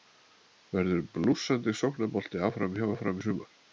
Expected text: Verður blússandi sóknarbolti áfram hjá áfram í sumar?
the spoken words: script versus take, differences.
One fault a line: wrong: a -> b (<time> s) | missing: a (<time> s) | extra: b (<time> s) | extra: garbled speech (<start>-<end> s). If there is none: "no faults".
no faults